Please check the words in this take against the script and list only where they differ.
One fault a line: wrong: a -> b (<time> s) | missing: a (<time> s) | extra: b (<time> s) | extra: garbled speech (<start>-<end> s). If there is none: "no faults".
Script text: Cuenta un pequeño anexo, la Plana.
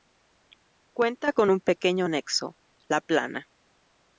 extra: con (1.3 s)